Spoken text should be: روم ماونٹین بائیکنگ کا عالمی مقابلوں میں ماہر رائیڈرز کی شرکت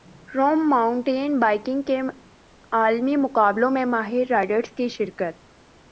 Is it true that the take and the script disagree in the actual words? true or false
true